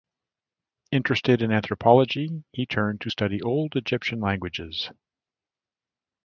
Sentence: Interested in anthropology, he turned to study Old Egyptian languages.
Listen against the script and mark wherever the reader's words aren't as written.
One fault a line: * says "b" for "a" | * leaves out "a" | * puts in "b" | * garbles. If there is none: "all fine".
all fine